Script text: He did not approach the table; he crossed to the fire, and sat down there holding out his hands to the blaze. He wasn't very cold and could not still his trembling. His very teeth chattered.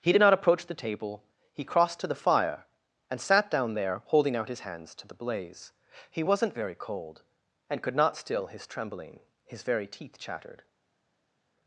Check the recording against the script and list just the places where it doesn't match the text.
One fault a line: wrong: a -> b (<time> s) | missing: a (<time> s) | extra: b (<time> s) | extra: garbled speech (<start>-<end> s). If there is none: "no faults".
no faults